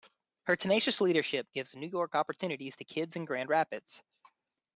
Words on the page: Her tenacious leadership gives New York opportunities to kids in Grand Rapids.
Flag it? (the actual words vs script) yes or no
no